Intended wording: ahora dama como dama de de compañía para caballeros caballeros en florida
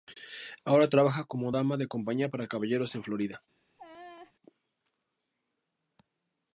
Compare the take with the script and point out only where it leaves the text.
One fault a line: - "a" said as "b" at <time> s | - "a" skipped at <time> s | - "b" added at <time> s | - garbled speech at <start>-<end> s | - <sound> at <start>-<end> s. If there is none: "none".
- "dama" said as "trabaja" at 0.9 s
- "de" skipped at 1.9 s
- "caballeros" skipped at 2.9 s
- laugh at 3.8-4.3 s